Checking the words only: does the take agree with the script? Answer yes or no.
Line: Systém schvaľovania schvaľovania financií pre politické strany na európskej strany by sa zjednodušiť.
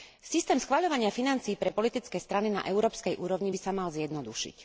no